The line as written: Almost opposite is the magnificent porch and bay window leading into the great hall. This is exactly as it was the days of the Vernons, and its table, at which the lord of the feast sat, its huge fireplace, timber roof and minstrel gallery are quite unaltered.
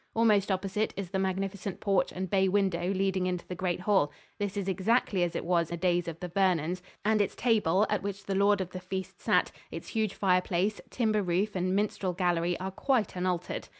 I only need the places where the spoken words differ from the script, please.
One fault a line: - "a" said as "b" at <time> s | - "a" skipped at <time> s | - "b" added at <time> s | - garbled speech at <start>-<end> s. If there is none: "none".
none